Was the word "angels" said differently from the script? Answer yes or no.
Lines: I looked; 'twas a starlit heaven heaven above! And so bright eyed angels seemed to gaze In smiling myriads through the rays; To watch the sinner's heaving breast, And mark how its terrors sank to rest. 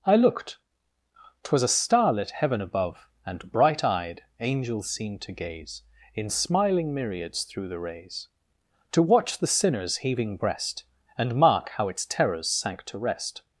no